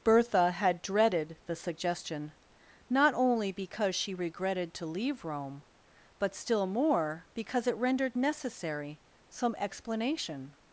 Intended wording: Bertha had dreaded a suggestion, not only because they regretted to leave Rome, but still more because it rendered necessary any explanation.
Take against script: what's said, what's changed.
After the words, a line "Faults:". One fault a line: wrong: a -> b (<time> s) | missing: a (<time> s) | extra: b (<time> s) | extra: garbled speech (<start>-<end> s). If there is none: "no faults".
Bertha had dreaded the suggestion, not only because she regretted to leave Rome, but still more because it rendered necessary some explanation.
Faults:
wrong: a -> the (1.4 s)
wrong: they -> she (4.0 s)
wrong: any -> some (9.3 s)